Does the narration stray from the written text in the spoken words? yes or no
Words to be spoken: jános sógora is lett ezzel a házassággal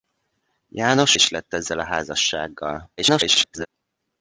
yes